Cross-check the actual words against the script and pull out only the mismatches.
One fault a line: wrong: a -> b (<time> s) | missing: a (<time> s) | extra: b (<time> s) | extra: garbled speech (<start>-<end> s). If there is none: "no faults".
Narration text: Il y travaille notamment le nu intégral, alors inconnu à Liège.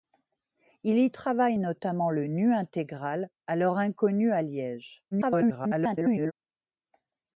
extra: garbled speech (5.1-6.3 s)